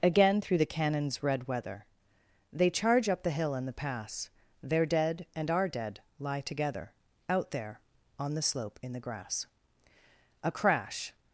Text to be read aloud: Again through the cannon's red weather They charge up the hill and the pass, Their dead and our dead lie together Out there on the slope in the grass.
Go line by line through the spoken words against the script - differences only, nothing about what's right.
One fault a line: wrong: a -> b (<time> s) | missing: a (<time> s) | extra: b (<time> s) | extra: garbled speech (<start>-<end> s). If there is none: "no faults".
extra: A crash (10.4 s)